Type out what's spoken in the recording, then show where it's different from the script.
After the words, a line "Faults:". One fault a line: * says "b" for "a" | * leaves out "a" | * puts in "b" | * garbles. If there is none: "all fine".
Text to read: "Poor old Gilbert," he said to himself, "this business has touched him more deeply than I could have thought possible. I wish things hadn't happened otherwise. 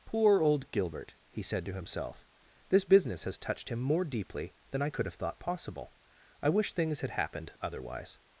"Poor old Gilbert," he said to himself, "this business has touched him more deeply than I could have thought possible. I wish things had happened otherwise.
Faults:
* says "had" for "hadn't"